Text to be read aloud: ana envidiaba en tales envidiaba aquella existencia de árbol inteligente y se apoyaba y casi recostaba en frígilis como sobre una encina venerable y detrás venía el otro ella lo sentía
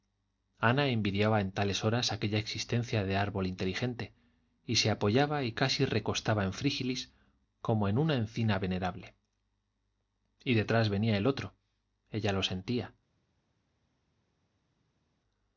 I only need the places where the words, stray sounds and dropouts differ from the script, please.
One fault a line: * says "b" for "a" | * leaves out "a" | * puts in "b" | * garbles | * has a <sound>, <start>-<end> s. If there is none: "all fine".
* says "horas" for "envidiaba"
* says "en" for "sobre"